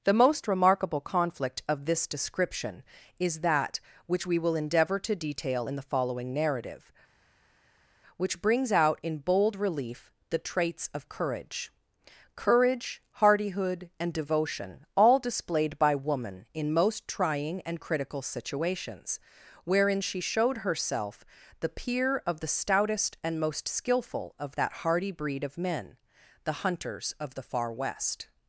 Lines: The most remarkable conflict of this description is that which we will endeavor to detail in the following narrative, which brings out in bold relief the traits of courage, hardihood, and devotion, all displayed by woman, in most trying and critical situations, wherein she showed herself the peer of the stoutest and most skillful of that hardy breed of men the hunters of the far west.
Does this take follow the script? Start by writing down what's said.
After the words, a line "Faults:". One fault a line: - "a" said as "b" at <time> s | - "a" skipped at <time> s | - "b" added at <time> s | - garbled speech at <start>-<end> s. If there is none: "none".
The most remarkable conflict of this description is that which we will endeavor to detail in the following narrative, which brings out in bold relief the traits of courage courage, hardihood, and devotion, all displayed by woman, in most trying and critical situations, wherein she showed herself the peer of the stoutest and most skillful of that hardy breed of men the hunters of the far west.
Faults:
- "courage" added at 12.4 s